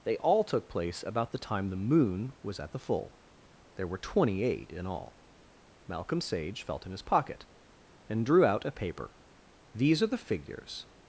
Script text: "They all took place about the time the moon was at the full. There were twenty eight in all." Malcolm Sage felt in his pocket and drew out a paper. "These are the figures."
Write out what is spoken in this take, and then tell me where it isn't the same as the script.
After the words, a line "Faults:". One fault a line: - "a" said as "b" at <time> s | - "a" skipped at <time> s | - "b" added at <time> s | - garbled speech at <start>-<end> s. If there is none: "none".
"They all took place about the time the moon was at the full. There were twenty eight in all." Malcolm Sage felt in his pocket and drew out a paper. "These are the figures."
Faults:
none